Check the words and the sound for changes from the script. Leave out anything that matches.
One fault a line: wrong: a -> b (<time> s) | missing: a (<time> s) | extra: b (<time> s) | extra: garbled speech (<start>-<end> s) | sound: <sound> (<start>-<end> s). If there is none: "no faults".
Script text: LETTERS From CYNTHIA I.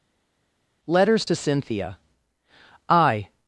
wrong: From -> TO (1.2 s)